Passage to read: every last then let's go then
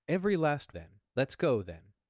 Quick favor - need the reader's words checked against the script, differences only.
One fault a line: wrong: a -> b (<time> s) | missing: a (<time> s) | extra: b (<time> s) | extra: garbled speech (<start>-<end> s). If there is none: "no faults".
no faults